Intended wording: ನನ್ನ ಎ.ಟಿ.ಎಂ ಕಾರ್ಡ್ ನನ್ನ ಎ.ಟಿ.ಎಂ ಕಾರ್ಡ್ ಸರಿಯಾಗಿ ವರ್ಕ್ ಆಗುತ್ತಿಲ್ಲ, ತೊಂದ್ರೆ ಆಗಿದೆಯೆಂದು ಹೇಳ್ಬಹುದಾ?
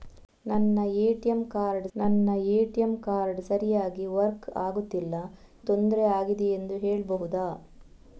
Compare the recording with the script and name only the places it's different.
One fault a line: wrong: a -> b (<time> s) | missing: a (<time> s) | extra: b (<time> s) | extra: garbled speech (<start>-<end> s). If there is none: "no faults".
no faults